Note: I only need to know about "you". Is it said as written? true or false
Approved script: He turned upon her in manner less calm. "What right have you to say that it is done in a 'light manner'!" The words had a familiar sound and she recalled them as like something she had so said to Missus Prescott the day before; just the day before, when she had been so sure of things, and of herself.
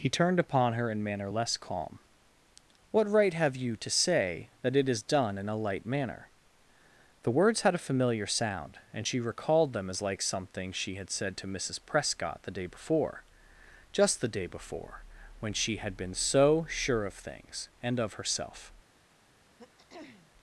true